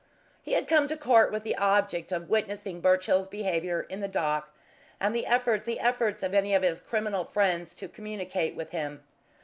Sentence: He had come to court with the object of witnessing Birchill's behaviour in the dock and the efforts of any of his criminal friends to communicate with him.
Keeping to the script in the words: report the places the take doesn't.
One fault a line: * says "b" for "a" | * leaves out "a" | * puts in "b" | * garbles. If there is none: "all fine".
* puts in "the efforts"